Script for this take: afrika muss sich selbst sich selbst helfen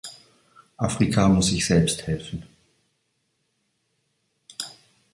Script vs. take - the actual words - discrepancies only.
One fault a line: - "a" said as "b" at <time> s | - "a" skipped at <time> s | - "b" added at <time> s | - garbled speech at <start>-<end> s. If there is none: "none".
- "sich selbst" skipped at 2.1 s